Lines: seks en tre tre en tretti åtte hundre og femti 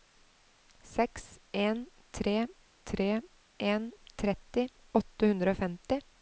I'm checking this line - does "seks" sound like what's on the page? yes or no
yes